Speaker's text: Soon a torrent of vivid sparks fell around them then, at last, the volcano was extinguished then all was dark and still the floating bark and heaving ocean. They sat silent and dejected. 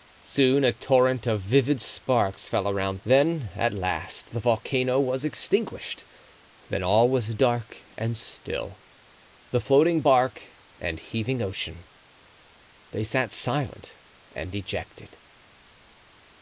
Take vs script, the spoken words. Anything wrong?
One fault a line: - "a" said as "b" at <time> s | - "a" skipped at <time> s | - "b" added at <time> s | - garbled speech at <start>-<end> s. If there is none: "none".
- "them" skipped at 3.0 s